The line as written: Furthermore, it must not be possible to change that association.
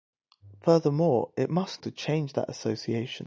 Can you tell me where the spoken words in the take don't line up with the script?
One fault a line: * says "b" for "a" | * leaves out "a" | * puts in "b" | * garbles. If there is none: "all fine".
* leaves out "not be possible"